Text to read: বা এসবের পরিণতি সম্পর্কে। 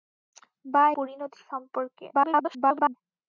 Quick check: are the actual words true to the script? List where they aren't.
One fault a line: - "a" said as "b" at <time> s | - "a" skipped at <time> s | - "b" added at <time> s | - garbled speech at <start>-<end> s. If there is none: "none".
- "এসবের" skipped at 0.8 s
- garbled speech at 2.1-3.0 s